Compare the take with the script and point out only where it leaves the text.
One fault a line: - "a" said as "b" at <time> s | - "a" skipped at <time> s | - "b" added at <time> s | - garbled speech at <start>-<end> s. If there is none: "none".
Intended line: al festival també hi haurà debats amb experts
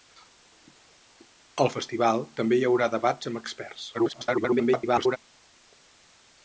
- garbled speech at 3.9-5.2 s